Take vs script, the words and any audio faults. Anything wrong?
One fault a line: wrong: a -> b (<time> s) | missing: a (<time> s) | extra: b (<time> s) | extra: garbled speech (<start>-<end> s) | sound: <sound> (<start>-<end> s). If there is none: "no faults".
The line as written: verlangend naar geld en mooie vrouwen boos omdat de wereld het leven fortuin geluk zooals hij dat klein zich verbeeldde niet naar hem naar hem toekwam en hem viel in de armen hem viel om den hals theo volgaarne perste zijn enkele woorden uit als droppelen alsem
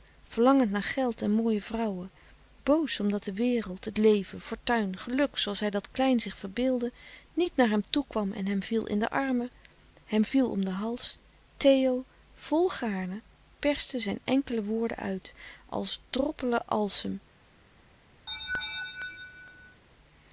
missing: naar hem (7.8 s)
sound: laugh (18.3-19.8 s)